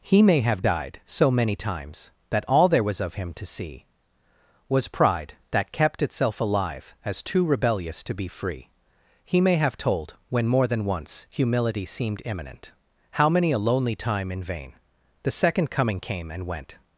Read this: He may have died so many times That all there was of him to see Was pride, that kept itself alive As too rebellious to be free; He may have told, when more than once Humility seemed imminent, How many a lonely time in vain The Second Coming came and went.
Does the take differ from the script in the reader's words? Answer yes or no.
no